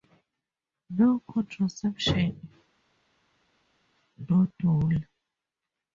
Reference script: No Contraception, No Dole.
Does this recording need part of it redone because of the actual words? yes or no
no